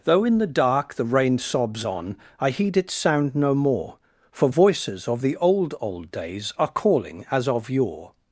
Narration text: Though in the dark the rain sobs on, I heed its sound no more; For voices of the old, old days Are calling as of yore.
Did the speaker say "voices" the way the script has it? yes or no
yes